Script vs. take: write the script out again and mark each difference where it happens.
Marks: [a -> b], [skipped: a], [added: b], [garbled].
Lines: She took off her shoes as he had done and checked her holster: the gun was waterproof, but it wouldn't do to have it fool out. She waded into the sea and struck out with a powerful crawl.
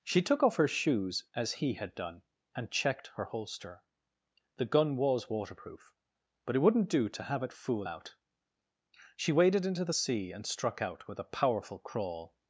She took off her shoes as he had done and checked her holster: the gun was waterproof, but it wouldn't do to have it fool out. She waded into the sea and struck out with a powerful crawl.